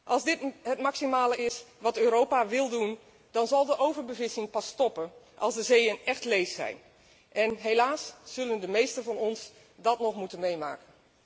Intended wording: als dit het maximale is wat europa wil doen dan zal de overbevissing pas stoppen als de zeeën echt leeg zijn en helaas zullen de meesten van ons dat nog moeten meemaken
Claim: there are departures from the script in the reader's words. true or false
false